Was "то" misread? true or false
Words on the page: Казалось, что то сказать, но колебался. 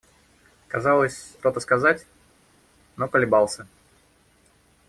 false